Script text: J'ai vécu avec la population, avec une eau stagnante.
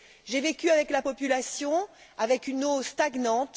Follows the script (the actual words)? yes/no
yes